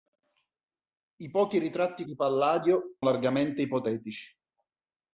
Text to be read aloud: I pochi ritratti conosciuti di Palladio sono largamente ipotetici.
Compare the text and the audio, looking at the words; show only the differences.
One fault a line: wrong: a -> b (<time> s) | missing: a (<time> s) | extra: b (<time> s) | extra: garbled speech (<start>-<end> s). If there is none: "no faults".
missing: conosciuti (2.0 s)
missing: sono (3.0 s)